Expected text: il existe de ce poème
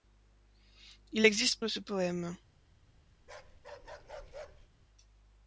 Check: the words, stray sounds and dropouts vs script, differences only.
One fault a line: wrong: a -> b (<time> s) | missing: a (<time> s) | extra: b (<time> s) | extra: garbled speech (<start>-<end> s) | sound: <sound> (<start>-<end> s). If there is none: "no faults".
sound: bark (3.2-4.7 s)